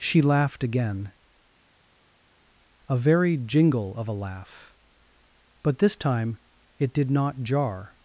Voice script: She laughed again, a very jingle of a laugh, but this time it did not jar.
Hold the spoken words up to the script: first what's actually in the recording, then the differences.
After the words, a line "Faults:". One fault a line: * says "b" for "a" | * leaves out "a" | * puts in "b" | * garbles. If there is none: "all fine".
She laughed again, a very jingle of a laugh, but this time it did not jar.
Faults:
all fine